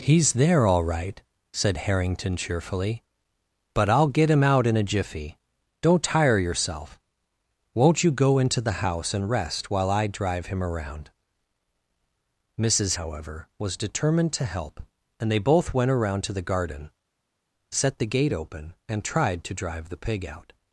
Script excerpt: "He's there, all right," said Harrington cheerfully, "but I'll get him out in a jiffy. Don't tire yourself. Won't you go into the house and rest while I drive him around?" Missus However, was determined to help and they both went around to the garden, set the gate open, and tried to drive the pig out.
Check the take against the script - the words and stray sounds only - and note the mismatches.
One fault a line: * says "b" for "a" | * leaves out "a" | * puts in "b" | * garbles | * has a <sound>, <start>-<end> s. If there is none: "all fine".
all fine